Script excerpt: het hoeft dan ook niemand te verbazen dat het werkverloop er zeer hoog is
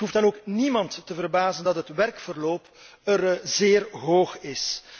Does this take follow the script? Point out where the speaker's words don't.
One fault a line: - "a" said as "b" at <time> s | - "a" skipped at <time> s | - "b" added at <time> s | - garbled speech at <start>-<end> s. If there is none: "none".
none